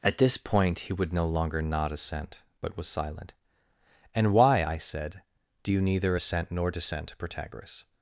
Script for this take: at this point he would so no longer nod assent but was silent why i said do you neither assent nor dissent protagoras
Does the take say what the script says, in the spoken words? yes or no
no